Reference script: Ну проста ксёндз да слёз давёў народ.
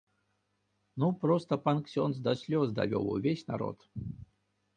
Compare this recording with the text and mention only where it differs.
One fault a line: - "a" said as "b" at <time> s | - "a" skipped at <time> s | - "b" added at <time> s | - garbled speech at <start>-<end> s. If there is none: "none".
- "пан" added at 1.6 s
- "увесь" added at 3.2 s